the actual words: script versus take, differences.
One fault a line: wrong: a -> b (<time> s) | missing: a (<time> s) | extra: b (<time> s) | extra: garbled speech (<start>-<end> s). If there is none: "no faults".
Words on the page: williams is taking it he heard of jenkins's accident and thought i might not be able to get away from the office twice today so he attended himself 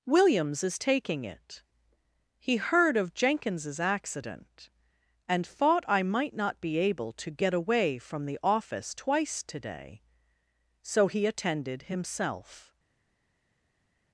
no faults